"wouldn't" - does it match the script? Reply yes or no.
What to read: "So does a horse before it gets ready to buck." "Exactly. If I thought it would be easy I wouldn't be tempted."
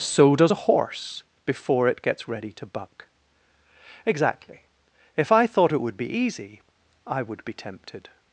no